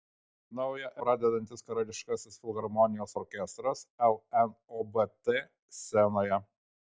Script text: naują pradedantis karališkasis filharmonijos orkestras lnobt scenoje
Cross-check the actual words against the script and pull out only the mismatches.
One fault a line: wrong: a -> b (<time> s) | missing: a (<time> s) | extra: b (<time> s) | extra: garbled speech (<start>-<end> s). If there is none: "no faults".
no faults